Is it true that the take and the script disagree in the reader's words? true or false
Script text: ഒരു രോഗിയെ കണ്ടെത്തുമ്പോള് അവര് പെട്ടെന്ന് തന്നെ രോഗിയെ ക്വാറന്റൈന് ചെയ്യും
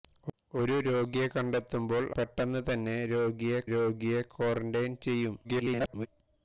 true